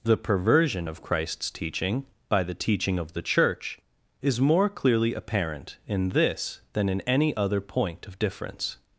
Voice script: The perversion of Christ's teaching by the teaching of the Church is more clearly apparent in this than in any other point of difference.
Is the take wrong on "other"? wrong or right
right